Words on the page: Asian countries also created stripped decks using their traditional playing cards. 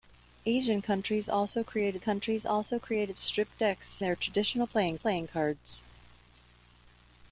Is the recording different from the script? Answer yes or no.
yes